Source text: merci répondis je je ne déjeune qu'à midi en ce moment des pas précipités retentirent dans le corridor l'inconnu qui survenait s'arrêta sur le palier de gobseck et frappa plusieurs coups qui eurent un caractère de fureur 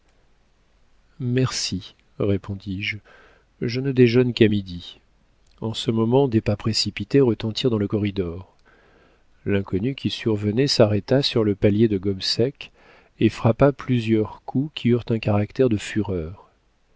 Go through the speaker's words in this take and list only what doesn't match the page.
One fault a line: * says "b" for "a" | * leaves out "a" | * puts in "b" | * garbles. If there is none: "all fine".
all fine